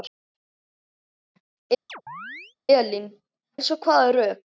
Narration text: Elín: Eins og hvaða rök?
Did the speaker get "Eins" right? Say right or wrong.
right